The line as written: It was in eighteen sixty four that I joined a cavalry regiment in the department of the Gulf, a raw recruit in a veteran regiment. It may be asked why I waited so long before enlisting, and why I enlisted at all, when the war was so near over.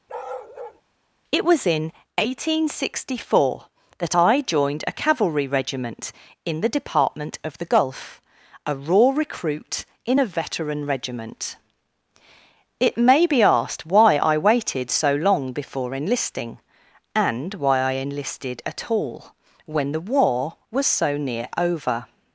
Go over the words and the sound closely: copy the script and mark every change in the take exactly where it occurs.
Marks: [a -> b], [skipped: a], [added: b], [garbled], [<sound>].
[bark] It was in eighteen sixty four that I joined a cavalry regiment in the department of the Gulf, a raw recruit in a veteran regiment. It may be asked why I waited so long before enlisting, and why I enlisted at all, when the war was so near over.